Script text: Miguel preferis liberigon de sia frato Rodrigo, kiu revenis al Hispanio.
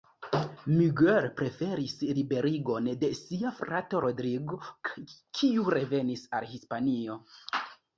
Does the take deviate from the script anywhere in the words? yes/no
no